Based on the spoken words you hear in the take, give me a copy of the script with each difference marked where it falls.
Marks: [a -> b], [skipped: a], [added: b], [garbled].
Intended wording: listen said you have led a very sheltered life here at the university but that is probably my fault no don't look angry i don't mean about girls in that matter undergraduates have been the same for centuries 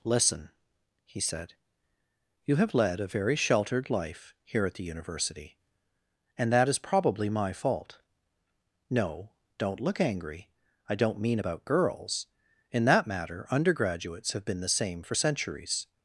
listen [added: he] said you have led a very sheltered life here at the university [but -> and] that is probably my fault no don't look angry i don't mean about girls in that matter undergraduates have been the same for centuries